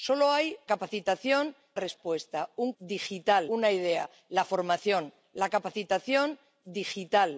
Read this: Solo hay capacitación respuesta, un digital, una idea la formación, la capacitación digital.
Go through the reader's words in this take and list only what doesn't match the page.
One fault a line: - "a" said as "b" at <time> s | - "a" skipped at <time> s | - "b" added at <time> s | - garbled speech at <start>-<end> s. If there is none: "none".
none